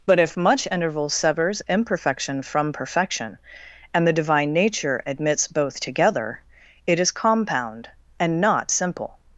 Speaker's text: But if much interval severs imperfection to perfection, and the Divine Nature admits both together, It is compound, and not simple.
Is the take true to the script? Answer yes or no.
no